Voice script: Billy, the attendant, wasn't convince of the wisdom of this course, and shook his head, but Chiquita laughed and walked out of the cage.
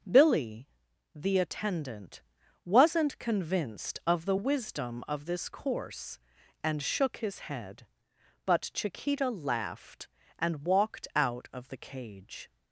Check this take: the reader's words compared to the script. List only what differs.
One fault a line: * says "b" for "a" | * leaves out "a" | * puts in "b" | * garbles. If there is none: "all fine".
* says "convinced" for "convince"